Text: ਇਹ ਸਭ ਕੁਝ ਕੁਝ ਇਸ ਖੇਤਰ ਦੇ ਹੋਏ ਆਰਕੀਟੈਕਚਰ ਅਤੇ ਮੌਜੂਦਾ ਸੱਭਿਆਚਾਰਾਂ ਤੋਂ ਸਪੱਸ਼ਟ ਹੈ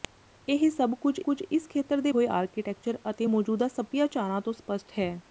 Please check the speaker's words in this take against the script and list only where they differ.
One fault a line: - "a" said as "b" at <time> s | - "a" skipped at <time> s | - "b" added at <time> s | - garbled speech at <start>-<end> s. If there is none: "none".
none